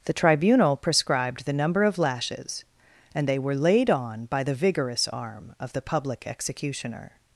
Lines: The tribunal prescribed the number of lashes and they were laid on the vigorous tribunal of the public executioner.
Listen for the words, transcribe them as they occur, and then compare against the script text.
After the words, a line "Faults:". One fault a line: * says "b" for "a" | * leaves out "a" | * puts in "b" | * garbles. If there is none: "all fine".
The tribunal prescribed the number of lashes and they were laid on by the vigorous arm of the public executioner.
Faults:
* puts in "by"
* says "arm" for "tribunal"